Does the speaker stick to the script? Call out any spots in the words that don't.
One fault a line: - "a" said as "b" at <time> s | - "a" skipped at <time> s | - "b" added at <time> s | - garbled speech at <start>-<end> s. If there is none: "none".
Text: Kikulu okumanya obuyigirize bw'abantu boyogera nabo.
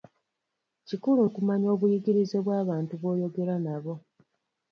none